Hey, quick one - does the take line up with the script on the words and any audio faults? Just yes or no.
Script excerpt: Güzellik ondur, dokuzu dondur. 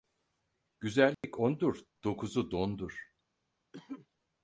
no